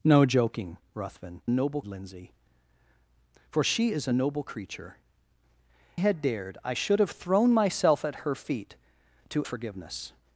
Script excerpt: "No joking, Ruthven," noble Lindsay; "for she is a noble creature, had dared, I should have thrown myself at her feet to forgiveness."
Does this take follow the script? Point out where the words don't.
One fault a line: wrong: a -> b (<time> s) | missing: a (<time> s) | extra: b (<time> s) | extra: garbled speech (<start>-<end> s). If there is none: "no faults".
no faults